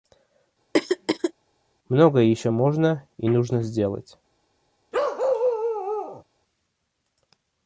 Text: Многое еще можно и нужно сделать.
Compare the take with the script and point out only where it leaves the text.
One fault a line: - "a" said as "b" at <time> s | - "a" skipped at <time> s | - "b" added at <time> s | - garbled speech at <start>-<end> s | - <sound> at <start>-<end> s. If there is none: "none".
- throat clearing at 0.7-1.3 s
- bark at 4.9-6.2 s